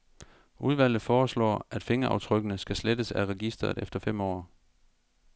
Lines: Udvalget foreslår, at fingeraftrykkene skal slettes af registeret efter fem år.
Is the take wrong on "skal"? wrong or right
right